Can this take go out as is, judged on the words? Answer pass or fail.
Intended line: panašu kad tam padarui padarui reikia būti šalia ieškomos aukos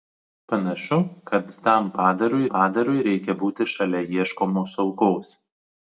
pass